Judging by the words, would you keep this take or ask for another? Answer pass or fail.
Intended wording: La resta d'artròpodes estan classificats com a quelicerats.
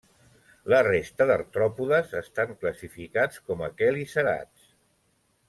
pass